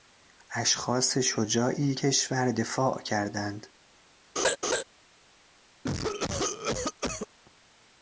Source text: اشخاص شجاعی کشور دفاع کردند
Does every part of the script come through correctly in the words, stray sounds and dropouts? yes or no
no